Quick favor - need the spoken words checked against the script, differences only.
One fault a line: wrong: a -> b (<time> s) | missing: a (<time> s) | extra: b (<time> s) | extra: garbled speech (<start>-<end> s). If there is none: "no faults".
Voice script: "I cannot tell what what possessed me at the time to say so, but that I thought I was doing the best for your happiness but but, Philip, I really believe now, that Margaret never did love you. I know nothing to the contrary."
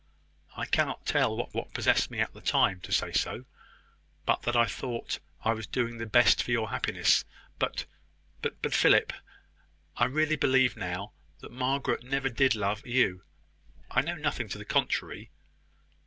no faults